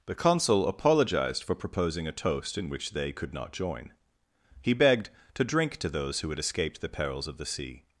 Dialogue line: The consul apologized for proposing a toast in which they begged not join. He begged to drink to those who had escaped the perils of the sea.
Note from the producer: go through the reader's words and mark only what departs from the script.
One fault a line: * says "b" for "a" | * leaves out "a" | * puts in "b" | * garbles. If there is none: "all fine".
* says "could" for "begged"